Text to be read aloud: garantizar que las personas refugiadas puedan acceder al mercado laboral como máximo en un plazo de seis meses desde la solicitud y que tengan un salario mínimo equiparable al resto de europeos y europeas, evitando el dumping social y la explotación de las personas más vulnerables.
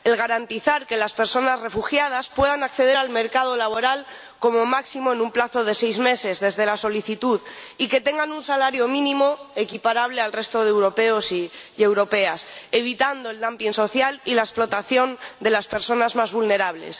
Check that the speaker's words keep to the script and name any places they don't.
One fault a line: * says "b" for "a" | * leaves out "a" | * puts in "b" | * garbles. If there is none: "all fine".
all fine